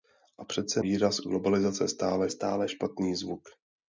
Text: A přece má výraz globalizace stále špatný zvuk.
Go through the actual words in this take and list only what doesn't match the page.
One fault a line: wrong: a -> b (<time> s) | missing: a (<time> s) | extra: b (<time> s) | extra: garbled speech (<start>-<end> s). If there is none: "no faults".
missing: má (0.8 s)
extra: stále (2.3 s)